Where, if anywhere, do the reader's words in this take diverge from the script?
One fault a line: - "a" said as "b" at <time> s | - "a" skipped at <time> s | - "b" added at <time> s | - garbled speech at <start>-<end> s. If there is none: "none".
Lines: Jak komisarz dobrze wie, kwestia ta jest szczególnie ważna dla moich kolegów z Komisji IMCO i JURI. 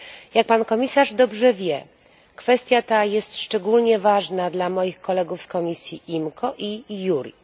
- "pan" added at 0.4 s